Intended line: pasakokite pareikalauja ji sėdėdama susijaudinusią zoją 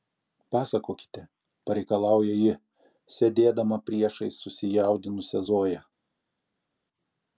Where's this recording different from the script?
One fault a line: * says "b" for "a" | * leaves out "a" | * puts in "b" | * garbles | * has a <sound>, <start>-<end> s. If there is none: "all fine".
* puts in "priešais"